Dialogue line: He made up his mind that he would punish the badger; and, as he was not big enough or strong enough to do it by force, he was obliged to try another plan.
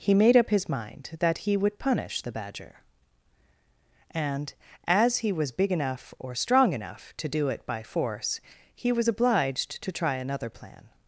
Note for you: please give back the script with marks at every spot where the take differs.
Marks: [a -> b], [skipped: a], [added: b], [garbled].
He made up his mind that he would punish the badger; and, as he was [skipped: not] big enough or strong enough to do it by force, he was obliged to try another plan.